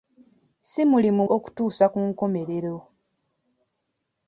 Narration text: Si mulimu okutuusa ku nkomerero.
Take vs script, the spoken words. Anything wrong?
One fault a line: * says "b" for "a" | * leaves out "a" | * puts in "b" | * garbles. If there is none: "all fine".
all fine